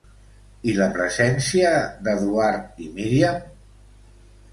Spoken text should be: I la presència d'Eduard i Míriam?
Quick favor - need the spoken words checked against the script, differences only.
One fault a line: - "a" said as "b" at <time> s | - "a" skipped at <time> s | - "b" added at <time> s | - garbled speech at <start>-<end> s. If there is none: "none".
none